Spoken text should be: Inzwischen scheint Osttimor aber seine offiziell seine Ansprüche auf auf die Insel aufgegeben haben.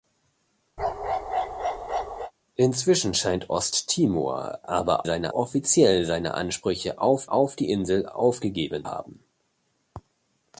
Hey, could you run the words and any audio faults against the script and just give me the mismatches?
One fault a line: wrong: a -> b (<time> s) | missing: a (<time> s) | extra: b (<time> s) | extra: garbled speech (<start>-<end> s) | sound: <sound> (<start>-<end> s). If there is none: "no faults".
sound: bark (0.8-2.3 s)